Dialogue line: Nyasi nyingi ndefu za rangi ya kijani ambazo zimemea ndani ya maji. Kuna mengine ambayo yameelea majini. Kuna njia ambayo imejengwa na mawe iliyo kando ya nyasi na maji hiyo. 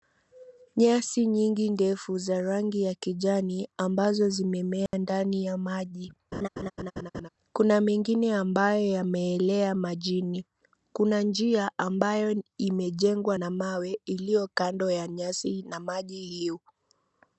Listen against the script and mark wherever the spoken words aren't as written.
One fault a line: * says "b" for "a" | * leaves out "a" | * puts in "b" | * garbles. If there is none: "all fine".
all fine